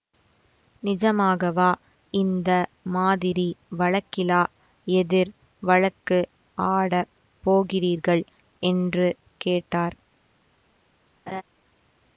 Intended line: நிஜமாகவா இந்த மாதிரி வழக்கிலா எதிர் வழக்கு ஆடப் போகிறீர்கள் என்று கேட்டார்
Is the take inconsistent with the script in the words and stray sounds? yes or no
yes